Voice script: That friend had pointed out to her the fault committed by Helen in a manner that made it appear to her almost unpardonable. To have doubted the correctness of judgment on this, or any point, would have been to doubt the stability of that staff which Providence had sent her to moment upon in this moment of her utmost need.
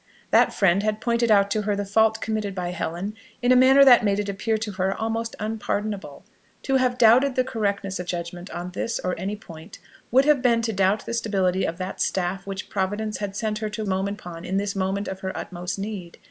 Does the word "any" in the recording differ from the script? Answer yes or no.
no